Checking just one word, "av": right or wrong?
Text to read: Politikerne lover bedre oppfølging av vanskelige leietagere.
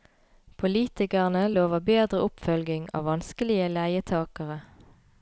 right